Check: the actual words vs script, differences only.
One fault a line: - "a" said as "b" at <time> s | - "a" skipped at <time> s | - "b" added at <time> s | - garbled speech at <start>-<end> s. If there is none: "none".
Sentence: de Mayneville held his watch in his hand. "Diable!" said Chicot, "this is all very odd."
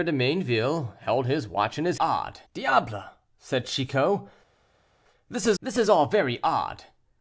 - "hand" said as "odd" at 2.0 s
- "this is" added at 5.6 s